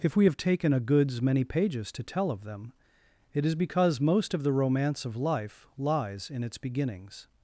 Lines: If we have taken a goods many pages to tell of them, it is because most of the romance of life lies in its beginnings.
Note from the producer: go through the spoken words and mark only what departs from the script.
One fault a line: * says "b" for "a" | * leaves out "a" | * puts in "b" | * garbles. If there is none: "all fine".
all fine